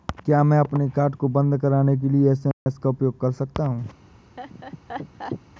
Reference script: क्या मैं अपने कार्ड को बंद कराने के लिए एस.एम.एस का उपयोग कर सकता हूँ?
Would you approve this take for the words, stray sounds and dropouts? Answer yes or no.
no